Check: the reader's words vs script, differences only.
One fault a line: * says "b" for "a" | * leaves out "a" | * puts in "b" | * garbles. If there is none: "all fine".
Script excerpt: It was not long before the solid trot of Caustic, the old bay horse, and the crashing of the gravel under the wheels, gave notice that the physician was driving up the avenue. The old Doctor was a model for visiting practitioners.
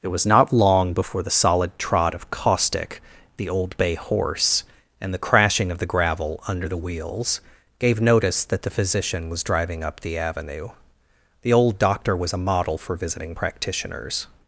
all fine